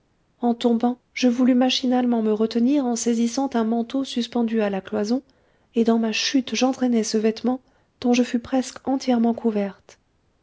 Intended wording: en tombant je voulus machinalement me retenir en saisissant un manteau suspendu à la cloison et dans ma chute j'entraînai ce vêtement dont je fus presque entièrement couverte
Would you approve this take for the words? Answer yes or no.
yes